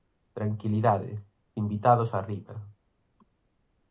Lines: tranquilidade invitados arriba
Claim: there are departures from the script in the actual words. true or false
false